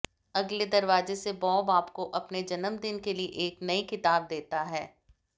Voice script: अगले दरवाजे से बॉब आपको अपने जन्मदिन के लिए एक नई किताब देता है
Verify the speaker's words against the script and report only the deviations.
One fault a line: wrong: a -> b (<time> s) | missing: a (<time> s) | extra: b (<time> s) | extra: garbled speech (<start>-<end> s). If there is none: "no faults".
no faults